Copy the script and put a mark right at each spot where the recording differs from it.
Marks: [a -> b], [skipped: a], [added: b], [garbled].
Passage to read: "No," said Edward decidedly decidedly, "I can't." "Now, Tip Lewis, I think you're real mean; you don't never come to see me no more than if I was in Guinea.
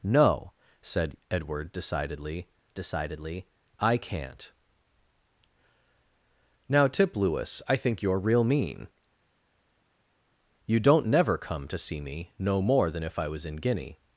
"No," said Edward decidedly decidedly, "I can't." "Now, Tip Lewis, I think you're real mean; you don't never come to see me no more than if I was in Guinea.